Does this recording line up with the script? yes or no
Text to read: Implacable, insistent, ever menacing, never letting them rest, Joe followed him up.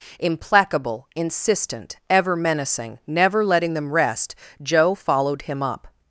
yes